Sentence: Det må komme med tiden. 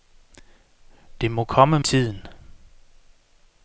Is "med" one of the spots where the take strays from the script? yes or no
yes